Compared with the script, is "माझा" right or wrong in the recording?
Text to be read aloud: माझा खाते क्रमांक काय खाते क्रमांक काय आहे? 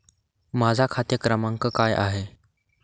right